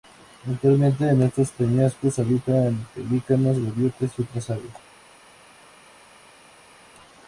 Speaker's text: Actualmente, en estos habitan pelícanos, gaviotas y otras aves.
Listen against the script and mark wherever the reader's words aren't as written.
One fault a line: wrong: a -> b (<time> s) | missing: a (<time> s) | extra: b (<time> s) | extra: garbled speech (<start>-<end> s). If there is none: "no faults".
extra: peñascos (1.5 s)